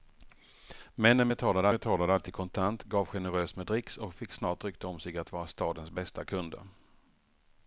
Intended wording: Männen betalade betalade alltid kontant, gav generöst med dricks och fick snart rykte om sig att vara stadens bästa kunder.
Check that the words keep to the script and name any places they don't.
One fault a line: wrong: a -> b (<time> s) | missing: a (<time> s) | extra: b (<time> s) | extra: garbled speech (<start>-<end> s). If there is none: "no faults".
no faults